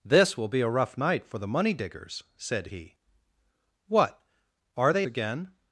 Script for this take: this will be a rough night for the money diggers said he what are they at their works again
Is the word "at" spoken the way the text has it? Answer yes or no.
no